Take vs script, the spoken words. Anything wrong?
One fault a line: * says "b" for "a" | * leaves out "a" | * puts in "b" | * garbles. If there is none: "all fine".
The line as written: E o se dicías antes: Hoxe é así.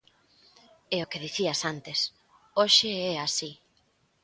* says "que" for "se"